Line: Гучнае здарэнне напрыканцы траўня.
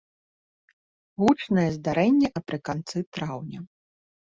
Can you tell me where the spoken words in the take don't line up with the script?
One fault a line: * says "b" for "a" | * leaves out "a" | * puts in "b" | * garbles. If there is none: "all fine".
all fine